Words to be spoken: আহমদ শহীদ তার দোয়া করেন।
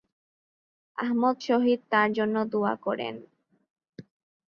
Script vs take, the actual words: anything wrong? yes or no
yes